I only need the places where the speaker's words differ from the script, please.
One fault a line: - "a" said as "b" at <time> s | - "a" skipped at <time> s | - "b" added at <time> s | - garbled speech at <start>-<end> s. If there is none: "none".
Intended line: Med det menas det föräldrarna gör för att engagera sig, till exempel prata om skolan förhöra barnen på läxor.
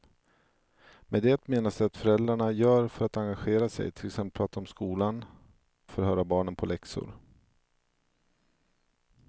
none